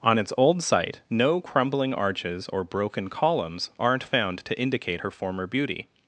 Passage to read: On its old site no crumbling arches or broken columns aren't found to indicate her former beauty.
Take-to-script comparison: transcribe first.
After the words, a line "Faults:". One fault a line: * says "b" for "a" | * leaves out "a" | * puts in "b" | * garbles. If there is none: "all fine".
On its old site no crumbling arches or broken columns aren't found to indicate her former beauty.
Faults:
all fine